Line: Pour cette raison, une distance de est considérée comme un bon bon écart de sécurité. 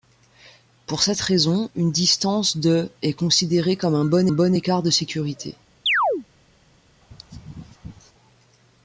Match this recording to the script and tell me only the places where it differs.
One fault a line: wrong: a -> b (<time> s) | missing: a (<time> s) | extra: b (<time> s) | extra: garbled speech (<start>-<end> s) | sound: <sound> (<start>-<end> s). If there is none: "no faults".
sound: chirp (5.9-6.3 s)
sound: sneeze (7.0-8.1 s)